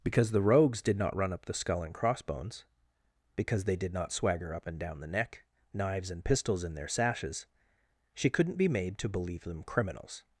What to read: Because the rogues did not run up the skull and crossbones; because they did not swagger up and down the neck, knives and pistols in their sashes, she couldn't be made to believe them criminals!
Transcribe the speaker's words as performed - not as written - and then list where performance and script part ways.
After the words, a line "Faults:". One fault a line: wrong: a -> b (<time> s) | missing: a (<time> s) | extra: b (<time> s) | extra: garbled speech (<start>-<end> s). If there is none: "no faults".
Because the rogues did not run up the skull and crossbones; because they did not swagger up and down the neck, knives and pistols in their sashes, she couldn't be made to believe them criminals!
Faults:
no faults